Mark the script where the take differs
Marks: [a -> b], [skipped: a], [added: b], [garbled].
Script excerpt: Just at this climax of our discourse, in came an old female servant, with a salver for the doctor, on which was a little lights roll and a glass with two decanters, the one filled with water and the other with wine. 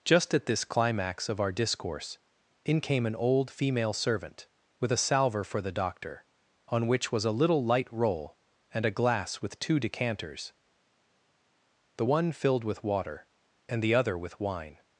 Just at this climax of our discourse, in came an old female servant, with a salver for the doctor, on which was a little [lights -> light] roll and a glass with two decanters, the one filled with water and the other with wine.